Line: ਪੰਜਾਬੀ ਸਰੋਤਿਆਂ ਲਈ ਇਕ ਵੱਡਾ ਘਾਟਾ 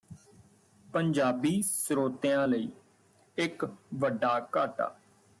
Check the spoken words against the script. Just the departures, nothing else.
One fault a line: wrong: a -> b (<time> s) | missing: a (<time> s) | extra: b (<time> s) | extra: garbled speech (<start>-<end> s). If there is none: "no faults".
no faults